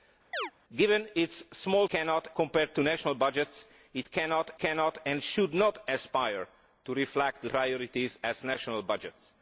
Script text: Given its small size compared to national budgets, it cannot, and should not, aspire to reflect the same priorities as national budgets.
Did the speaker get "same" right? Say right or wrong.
wrong